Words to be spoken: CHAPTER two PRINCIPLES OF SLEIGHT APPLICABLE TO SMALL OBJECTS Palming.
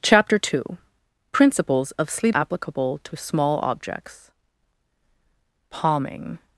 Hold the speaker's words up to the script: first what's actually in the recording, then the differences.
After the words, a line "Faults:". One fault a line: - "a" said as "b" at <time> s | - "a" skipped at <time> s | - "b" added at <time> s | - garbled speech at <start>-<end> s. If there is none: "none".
CHAPTER two PRINCIPLES OF SLEIGHT APPLICABLE TO SMALL OBJECTS Palming.
Faults:
none